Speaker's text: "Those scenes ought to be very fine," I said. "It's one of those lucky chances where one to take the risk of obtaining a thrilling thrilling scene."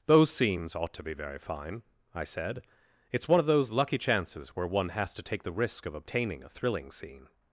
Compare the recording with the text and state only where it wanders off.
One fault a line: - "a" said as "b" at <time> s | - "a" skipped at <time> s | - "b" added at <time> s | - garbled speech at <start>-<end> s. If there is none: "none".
- "has" added at 4.9 s
- "thrilling" skipped at 6.9 s